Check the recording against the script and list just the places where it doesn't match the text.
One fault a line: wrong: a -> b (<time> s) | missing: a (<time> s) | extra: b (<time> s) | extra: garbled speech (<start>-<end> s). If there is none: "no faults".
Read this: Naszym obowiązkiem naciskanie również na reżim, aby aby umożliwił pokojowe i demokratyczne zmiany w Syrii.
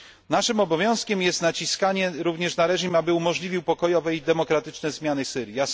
extra: jest (1.2 s)
missing: aby (3.1 s)